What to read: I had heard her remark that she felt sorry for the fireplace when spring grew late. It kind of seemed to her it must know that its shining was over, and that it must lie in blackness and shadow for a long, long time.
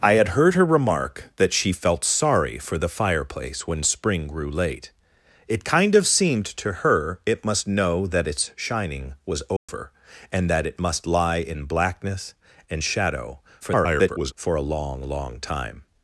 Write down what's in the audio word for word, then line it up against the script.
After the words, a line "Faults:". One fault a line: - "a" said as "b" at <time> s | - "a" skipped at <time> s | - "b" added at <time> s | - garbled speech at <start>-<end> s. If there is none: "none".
I had heard her remark that she felt sorry for the fireplace when spring grew late. It kind of seemed to her it must know that its shining was over, and that it must lie in blackness and shadow [garbled] for a long, long time.
Faults:
- garbled speech at 13.6-14.3 s